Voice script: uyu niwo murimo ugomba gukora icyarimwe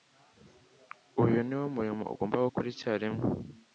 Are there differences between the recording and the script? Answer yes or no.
no